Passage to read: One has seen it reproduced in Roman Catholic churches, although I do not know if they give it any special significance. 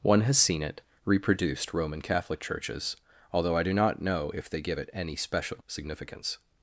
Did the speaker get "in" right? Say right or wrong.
wrong